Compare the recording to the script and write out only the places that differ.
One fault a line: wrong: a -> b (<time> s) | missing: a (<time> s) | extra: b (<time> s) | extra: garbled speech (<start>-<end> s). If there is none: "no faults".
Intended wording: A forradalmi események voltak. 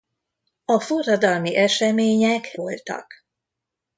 no faults